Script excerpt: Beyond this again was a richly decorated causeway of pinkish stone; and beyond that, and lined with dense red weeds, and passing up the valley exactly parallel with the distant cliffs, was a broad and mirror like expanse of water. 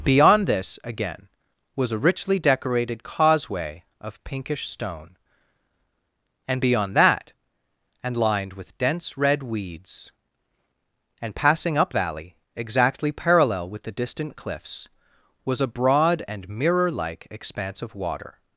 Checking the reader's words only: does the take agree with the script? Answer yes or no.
no